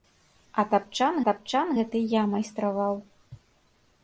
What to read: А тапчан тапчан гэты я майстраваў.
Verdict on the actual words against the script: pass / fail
pass